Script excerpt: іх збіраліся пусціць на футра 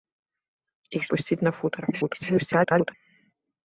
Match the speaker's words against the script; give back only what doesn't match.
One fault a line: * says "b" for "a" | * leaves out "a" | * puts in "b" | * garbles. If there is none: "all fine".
* leaves out "збіраліся"
* garbles